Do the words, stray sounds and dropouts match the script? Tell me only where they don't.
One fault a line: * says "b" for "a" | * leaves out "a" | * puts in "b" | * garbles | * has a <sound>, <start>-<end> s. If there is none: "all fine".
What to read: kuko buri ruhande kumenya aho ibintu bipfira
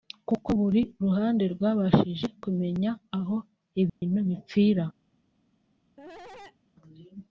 * puts in "rwabashije"
* has a dropout, 3.9-4.0 s
* has a cough, 6.0-6.6 s